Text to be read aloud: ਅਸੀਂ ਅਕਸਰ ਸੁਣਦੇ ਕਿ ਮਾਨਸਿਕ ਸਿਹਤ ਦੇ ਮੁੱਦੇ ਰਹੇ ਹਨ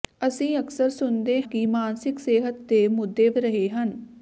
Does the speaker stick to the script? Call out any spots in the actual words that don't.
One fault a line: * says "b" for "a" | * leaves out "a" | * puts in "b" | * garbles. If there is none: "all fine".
all fine